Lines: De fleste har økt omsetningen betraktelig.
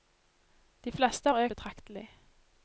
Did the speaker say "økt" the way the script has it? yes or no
no